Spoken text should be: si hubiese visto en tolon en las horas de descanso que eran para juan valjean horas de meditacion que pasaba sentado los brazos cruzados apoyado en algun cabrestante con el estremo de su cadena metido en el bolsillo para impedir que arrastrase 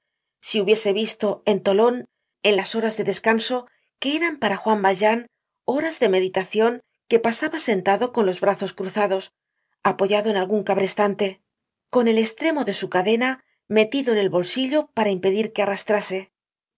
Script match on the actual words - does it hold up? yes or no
no